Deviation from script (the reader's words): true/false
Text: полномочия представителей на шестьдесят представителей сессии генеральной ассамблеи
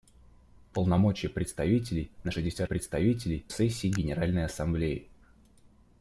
false